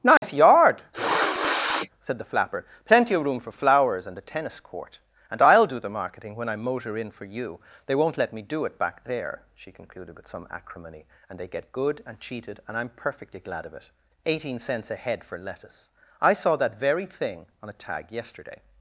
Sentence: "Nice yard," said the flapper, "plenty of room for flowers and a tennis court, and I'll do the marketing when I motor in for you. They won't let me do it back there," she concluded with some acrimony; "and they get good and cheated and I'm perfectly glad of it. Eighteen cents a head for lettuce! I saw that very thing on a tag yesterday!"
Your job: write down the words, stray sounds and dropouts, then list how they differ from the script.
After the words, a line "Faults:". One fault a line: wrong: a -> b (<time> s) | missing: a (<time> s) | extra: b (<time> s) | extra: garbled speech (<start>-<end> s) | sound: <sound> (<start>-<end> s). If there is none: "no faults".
"Nice yard," said the flapper, "plenty of room for flowers and a tennis court, and I'll do the marketing when I motor in for you. They won't let me do it back there," she concluded with some acrimony; "and they get good and cheated and I'm perfectly glad of it. Eighteen cents a head for lettuce! I saw that very thing on a tag yesterday!"
Faults:
sound: dropout (0.2-0.2 s)
sound: sniff (0.9-1.9 s)